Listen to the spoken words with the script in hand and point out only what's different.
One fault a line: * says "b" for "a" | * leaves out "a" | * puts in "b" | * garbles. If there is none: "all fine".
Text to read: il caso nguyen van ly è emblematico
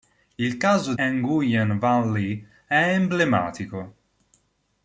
all fine